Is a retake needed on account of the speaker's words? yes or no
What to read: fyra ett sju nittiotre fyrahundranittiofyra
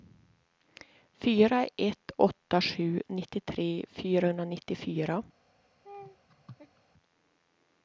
yes